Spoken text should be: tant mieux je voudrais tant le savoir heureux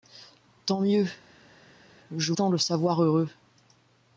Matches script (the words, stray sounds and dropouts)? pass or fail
fail